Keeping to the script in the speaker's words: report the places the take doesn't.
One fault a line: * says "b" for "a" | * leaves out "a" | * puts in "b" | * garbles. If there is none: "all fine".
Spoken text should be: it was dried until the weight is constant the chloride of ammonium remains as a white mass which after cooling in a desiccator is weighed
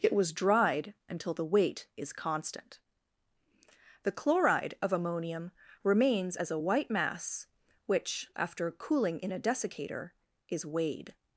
all fine